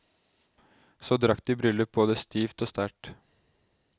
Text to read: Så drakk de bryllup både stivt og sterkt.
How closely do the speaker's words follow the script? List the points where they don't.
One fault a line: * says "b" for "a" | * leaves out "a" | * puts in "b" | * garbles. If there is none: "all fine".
all fine